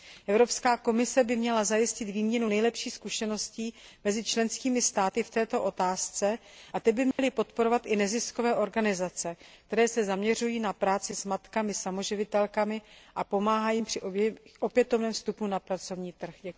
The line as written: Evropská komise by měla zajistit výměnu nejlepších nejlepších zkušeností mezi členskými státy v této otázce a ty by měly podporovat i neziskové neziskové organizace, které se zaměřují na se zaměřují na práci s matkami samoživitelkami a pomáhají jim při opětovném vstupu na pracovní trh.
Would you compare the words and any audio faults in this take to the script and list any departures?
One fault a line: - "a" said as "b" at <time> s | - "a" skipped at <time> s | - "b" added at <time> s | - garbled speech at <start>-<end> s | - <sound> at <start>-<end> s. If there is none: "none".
- "nejlepších" skipped at 2.9 s
- dropout at 7.1-7.2 s
- "neziskové" skipped at 8.5 s
- "se zaměřují na" skipped at 10.7 s